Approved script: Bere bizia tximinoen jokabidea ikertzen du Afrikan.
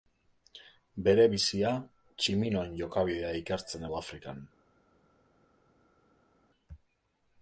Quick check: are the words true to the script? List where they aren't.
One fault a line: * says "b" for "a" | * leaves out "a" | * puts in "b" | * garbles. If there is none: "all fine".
all fine